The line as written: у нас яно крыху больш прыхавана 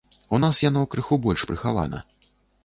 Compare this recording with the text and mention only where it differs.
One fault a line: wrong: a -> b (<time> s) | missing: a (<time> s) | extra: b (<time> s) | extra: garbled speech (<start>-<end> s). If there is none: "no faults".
no faults